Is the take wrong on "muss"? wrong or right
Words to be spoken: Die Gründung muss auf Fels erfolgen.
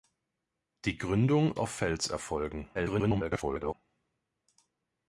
wrong